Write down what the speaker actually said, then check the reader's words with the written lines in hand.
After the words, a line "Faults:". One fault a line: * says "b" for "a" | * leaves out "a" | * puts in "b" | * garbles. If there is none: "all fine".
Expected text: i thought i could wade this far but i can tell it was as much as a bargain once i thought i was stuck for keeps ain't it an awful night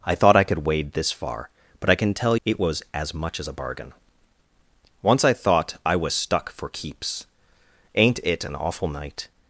i thought i could wade this far but i can tell it was as much as a bargain once i thought i was stuck for keeps ain't it an awful night
Faults:
all fine